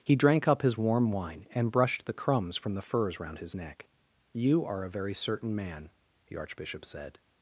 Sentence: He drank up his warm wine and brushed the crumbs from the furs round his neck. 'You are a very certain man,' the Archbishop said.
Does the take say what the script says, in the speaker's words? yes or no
yes